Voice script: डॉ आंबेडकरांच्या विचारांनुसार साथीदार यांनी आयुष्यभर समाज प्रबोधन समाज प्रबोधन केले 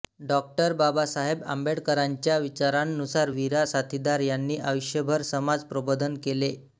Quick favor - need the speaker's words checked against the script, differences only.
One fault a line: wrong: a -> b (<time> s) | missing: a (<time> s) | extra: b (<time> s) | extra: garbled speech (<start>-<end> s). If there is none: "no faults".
extra: बाबासाहेब (0.7 s)
extra: वीरा (3.3 s)
missing: समाज प्रबोधन (6.2 s)